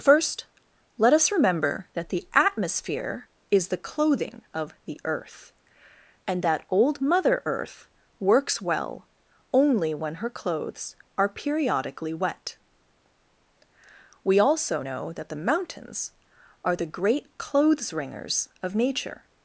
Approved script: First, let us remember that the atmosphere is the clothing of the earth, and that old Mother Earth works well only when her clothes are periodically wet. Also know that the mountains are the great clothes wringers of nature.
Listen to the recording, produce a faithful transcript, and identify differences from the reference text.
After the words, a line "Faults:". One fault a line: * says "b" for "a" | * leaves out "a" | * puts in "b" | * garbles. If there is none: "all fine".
First, let us remember that the atmosphere is the clothing of the earth, and that old Mother Earth works well only when her clothes are periodically wet. We also know that the mountains are the great clothes wringers of nature.
Faults:
* puts in "We"